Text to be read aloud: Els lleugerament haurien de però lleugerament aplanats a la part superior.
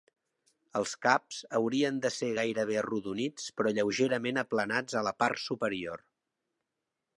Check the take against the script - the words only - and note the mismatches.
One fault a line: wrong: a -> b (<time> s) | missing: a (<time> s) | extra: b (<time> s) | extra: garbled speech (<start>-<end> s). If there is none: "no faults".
wrong: lleugerament -> caps (1.1 s)
extra: ser gairebé arrodonits (2.1 s)